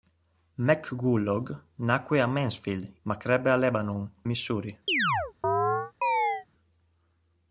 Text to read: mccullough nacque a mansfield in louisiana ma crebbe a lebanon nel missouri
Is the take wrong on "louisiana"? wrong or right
wrong